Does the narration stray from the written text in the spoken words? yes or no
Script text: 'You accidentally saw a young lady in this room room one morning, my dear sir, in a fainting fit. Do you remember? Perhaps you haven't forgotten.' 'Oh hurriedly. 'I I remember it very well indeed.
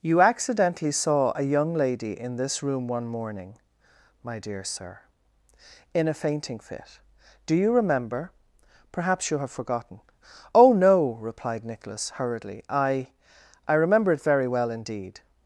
yes